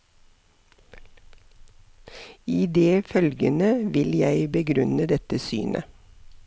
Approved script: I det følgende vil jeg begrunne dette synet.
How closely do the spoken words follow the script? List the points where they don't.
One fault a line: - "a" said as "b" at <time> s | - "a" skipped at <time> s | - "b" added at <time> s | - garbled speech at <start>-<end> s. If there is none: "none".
none